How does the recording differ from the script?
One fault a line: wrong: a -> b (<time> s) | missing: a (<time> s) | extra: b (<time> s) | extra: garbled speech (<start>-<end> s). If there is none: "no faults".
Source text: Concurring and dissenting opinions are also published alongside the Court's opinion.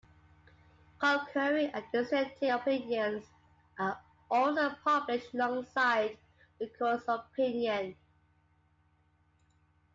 no faults